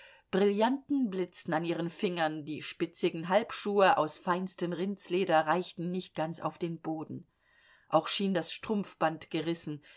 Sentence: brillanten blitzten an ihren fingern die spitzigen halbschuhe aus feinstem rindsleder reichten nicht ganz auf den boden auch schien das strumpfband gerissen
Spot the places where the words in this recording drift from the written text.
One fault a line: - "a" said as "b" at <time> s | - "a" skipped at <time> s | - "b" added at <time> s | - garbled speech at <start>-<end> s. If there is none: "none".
none